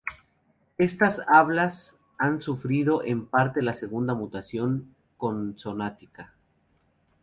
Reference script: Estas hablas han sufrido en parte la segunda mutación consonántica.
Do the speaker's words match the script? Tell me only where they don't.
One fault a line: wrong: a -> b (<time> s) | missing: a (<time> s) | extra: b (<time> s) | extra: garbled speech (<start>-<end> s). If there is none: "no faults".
no faults